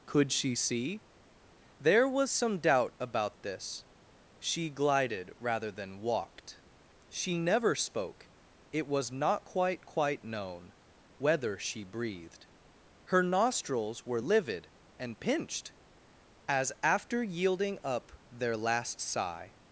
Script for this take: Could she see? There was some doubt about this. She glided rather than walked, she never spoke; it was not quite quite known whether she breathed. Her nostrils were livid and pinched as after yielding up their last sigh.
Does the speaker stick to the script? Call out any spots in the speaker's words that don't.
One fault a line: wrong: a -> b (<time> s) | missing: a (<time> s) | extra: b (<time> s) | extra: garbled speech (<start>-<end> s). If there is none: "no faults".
no faults